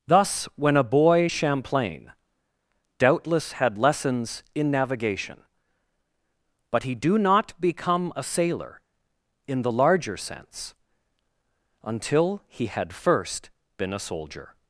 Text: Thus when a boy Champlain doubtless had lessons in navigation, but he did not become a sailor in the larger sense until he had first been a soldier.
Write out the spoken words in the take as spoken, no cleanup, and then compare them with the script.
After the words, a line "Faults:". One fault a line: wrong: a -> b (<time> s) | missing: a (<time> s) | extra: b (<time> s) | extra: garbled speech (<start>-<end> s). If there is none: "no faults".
Thus when a boy Champlain doubtless had lessons in navigation, but he do not become a sailor in the larger sense until he had first been a soldier.
Faults:
wrong: did -> do (6.9 s)